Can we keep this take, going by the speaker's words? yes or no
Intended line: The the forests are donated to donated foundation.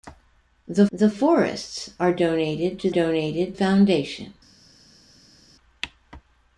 yes